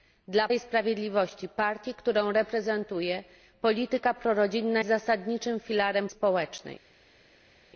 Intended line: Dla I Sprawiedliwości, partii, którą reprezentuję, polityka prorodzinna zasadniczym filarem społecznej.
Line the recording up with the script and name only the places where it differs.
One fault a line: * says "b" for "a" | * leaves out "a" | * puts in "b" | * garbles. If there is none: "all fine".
all fine